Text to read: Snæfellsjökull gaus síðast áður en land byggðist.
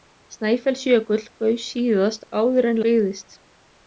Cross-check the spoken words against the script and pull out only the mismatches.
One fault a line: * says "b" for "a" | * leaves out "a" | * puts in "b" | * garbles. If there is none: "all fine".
* leaves out "land"